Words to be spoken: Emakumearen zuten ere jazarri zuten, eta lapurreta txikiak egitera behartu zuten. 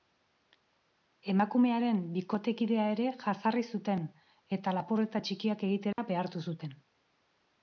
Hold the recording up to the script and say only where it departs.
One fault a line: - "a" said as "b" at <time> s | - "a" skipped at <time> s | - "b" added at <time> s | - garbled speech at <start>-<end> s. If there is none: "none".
- "zuten" said as "bikotekidea" at 2.1 s